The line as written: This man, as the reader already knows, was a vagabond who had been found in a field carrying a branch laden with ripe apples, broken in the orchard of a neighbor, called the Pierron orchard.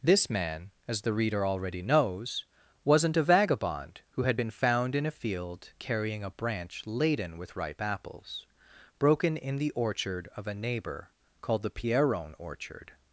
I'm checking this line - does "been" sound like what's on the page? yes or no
yes